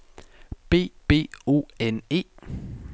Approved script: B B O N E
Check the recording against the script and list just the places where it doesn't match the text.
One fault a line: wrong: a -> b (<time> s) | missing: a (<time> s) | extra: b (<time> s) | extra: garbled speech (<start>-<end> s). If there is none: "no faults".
no faults